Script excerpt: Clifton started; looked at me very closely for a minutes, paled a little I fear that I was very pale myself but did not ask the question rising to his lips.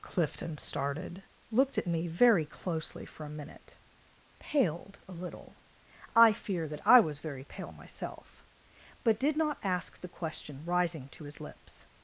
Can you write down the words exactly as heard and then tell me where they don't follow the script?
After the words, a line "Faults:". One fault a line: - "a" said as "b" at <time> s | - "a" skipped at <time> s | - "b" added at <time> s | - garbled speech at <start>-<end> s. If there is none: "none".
Clifton started; looked at me very closely for a minute, paled a little I fear that I was very pale myself but did not ask the question rising to his lips.
Faults:
- "minutes" said as "minute" at 3.3 s